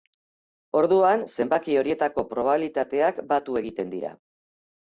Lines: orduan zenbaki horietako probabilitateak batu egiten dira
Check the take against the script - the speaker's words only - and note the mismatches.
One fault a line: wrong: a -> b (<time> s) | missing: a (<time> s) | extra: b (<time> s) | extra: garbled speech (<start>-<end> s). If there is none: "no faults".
no faults